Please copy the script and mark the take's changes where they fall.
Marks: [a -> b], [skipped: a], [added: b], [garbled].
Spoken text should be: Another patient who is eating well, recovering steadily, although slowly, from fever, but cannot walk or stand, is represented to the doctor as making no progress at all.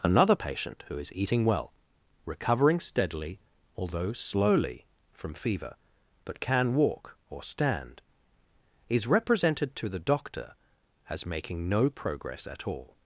Another patient who is eating well, recovering steadily, although slowly, from fever, but [cannot -> can] walk or stand, is represented to the doctor as making no progress at all.